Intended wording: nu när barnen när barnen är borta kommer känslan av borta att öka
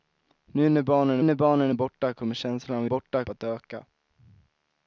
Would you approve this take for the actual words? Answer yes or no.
yes